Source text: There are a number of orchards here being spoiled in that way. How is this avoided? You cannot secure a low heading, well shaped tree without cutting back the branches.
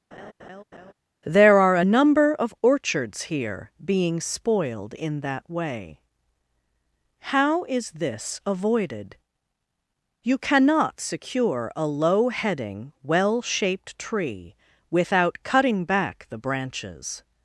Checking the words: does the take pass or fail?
pass